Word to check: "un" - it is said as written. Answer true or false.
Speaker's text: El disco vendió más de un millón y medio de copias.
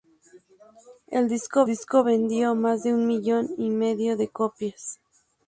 true